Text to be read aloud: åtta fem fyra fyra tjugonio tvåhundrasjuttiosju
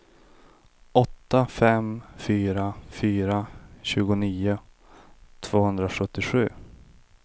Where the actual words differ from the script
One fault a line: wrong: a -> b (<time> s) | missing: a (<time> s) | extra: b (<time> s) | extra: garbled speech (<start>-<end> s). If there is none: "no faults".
no faults